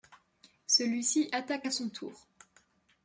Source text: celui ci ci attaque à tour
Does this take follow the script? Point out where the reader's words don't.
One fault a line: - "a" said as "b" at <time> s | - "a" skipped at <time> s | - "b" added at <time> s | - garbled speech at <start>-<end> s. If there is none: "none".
- "ci" skipped at 1.3 s
- "son" added at 1.7 s